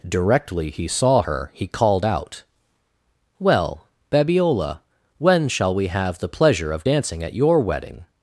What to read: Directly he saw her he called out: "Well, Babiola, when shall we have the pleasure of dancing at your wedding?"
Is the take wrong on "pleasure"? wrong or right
right